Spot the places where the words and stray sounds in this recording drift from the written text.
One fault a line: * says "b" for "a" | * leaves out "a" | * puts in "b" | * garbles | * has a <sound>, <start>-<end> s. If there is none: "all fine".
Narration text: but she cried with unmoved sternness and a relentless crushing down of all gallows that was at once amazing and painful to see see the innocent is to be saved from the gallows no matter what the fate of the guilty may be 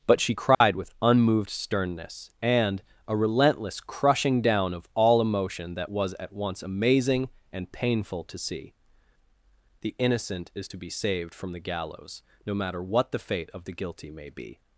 * has a dropout, 0.5-0.6 s
* says "emotion" for "gallows"
* leaves out "see"